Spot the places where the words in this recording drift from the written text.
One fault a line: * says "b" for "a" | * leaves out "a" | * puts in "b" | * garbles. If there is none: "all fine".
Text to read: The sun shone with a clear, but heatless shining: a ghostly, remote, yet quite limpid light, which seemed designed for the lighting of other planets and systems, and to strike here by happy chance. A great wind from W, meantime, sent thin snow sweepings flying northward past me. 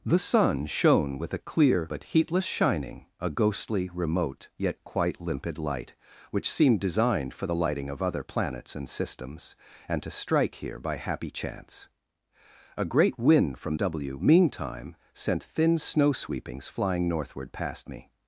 all fine